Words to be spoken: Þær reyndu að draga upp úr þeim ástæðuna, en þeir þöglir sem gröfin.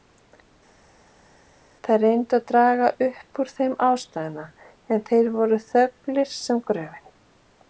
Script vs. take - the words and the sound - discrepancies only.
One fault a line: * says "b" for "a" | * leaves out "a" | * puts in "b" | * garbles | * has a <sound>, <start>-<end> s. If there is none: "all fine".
* puts in "voru"